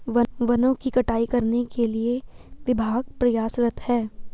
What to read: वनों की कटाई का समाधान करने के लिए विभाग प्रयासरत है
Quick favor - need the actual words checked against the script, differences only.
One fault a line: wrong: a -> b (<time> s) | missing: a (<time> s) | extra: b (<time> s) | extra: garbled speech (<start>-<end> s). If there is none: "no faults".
missing: का समाधान (1.2 s)